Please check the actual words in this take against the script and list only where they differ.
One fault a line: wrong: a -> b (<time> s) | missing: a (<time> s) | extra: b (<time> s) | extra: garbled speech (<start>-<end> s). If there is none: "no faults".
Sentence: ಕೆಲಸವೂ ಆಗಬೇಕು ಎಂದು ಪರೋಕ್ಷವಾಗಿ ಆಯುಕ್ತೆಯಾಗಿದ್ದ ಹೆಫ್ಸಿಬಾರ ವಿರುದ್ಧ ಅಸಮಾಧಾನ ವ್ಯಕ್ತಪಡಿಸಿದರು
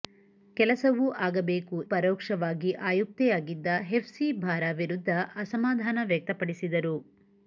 missing: ಎಂದು (1.8 s)